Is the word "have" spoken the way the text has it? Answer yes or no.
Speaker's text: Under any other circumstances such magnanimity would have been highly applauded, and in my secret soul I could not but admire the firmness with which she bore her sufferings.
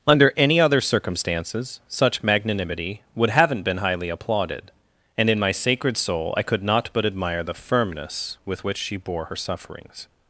no